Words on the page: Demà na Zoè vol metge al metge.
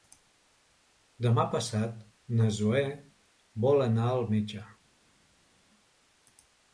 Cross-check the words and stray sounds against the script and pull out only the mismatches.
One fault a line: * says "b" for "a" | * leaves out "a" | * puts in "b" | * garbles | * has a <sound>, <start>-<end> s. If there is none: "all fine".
* puts in "passat"
* says "anar" for "metge"